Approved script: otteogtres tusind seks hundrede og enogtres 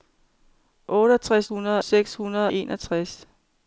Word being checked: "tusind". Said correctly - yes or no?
no